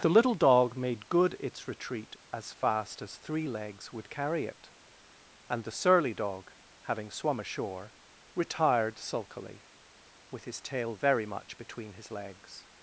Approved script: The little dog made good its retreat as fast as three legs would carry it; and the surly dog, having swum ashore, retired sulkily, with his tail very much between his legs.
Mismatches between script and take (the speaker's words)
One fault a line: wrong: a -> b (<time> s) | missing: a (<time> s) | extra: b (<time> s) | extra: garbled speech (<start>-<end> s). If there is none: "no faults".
no faults